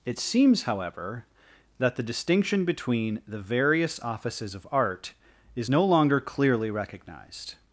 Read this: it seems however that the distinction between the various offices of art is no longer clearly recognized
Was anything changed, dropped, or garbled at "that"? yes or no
no